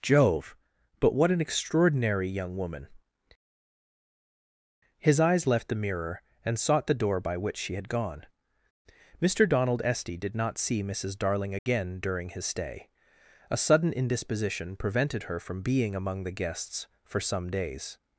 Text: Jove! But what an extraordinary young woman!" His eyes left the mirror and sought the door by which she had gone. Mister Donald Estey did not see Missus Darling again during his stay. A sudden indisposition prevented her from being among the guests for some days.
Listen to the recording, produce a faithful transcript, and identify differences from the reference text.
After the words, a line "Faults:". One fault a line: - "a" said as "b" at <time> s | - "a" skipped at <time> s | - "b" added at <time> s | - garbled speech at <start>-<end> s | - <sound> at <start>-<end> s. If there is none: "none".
Jove! But what an extraordinary young woman!" His eyes left the mirror and sought the door by which she had gone. Mister Donald Estey did not see Missus Darling again during his stay. A sudden indisposition prevented her from being among the guests for some days.
Faults:
- dropout at 11.6-11.7 s